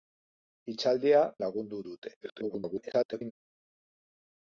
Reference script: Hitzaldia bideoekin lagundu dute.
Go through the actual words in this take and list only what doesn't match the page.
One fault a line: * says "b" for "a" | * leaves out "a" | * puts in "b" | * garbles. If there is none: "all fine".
* leaves out "bideoekin"
* garbles